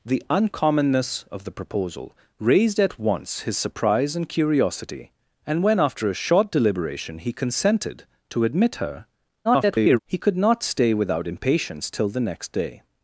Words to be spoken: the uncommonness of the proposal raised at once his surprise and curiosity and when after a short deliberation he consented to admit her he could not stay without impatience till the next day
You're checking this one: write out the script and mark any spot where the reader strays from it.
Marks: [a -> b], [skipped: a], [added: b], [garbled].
the uncommonness of the proposal raised at once his surprise and curiosity and when after a short deliberation he consented to admit her [garbled] he could not stay without impatience till the next day